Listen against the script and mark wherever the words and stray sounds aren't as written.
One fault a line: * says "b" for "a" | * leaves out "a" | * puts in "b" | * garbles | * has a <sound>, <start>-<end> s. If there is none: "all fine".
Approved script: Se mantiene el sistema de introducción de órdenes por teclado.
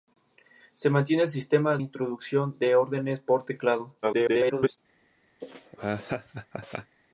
* leaves out "de"
* garbles
* has a laugh, 5.4-7.0 s